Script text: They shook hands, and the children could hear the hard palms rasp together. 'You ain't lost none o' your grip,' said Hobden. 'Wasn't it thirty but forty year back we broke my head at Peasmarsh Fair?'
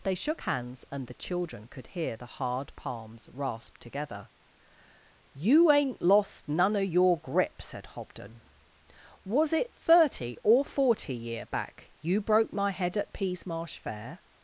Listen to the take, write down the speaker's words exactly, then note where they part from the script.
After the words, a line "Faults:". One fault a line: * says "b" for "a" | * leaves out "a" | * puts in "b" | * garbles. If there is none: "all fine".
They shook hands, and the children could hear the hard palms rasp together. 'You ain't lost none o' your grip,' said Hobden. 'Was it thirty or forty year back you broke my head at Peasmarsh Fair?'
Faults:
* says "Was" for "Wasn't"
* says "or" for "but"
* says "you" for "we"